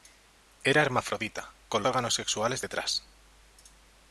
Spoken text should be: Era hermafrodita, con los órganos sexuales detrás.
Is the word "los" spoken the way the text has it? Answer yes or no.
no